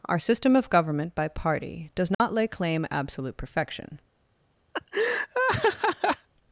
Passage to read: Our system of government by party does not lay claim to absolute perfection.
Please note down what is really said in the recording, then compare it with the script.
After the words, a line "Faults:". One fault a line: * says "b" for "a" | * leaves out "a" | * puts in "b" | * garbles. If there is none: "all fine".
Our system of government by party does not lay claim absolute perfection.
Faults:
* leaves out "to"